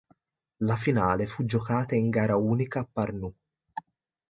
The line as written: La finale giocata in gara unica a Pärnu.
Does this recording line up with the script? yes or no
no